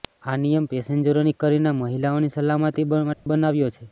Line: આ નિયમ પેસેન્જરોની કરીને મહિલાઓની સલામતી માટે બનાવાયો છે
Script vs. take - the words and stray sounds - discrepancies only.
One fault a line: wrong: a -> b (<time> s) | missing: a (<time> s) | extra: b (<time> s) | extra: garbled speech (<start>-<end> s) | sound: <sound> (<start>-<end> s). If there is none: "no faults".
sound: dropout (3.1-3.3 s)